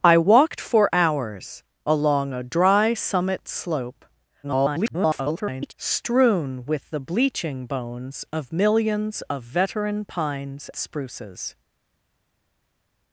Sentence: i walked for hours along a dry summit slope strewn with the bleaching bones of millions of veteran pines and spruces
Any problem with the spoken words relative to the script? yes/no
yes